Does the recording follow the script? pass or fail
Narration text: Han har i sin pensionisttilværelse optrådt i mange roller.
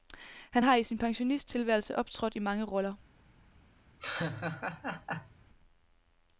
pass